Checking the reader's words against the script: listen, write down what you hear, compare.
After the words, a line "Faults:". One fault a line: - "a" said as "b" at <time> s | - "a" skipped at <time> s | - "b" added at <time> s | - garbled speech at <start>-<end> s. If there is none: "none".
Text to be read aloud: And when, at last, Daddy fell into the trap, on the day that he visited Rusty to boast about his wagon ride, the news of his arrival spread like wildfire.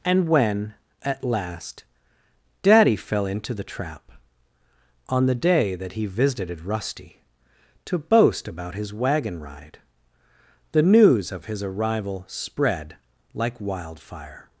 And when, at last, Daddy fell into the trap, on the day that he visited Rusty to boast about his wagon ride, the news of his arrival spread like wildfire.
Faults:
none